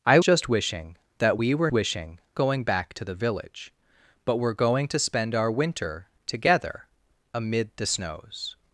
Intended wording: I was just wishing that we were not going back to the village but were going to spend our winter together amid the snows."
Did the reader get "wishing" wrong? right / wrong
right